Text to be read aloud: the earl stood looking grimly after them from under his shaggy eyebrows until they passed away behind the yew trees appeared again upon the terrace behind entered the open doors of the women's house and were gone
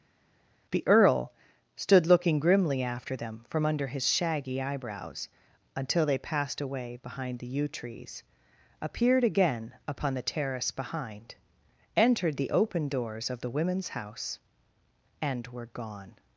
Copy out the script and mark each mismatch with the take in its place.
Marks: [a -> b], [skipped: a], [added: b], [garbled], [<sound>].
the earl stood looking grimly after them from under his shaggy eyebrows until they passed away behind the yew trees appeared again upon the terrace behind entered the open doors of the women's house and were gone